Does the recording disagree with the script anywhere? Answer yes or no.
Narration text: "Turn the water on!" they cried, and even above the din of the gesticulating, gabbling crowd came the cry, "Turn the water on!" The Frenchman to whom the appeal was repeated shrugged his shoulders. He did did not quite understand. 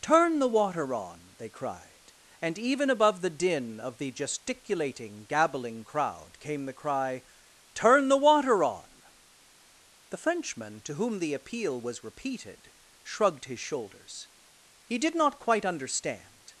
yes